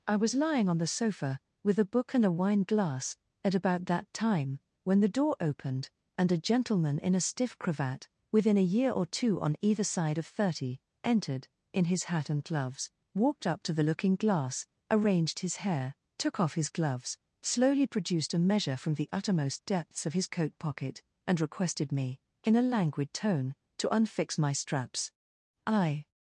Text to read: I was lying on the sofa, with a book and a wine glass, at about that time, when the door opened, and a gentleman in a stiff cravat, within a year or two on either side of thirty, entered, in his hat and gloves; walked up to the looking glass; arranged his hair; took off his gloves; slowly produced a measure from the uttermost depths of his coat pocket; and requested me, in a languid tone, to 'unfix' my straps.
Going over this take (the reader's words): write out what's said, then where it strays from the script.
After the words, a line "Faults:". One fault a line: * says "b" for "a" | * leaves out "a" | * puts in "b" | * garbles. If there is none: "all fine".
I was lying on the sofa, with a book and a wine glass, at about that time, when the door opened, and a gentleman in a stiff cravat, within a year or two on either side of thirty, entered, in his hat and gloves; walked up to the looking glass; arranged his hair; took off his gloves; slowly produced a measure from the uttermost depths of his coat pocket; and requested me, in a languid tone, to 'unfix' my straps. I
Faults:
* puts in "I"